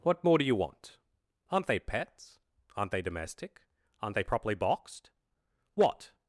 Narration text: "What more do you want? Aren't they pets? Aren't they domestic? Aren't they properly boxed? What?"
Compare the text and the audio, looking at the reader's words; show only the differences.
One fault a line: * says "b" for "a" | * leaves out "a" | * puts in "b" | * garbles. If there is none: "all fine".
all fine